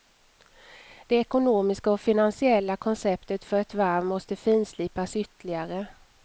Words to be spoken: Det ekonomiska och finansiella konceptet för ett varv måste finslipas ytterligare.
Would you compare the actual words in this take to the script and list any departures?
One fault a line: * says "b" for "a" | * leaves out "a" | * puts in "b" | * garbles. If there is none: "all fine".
all fine